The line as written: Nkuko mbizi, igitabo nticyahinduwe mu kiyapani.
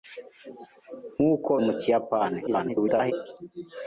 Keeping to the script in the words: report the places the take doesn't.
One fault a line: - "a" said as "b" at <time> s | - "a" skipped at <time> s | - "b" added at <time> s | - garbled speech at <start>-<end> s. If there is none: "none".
- "mbizi igitabo nticyahinduwe" skipped at 1.5 s
- garbled speech at 2.5-3.1 s